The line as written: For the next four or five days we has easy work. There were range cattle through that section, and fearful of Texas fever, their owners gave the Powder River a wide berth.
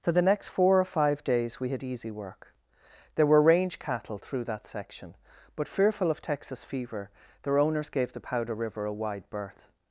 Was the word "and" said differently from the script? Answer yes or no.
yes